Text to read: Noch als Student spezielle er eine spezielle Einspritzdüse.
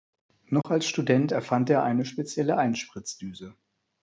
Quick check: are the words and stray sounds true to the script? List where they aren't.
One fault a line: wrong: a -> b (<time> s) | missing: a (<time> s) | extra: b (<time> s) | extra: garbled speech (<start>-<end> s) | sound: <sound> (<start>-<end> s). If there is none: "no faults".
sound: dropout (0.6-0.6 s)
wrong: spezielle -> erfand (1.3 s)